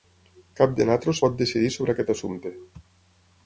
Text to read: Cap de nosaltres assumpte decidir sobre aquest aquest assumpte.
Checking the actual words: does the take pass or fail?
fail